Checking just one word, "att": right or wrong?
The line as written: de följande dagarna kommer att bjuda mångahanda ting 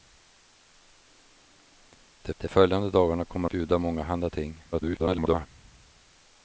wrong